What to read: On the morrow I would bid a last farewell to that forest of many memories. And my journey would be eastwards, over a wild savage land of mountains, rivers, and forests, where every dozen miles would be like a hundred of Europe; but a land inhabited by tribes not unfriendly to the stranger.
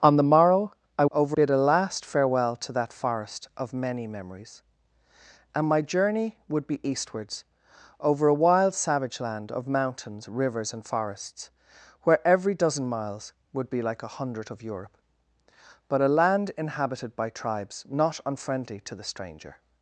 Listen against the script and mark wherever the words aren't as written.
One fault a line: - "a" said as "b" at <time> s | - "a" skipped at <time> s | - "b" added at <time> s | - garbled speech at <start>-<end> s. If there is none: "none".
- "would" said as "over" at 1.1 s